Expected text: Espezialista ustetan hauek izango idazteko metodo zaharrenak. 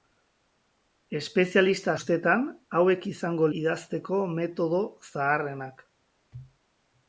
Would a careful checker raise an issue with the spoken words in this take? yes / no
no